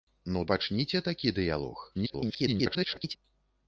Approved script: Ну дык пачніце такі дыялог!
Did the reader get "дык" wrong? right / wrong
wrong